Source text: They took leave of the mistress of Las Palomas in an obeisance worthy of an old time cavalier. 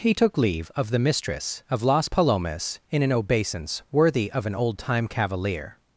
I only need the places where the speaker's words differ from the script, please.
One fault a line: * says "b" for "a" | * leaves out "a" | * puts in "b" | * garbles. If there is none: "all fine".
* says "He" for "They"